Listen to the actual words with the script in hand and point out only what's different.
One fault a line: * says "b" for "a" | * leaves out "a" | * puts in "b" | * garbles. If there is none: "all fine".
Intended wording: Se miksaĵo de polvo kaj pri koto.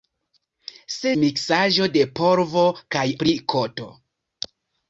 all fine